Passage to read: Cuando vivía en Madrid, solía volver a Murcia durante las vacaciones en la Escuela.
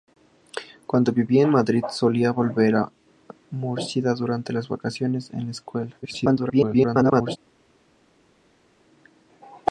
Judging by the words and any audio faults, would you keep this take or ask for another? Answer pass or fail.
fail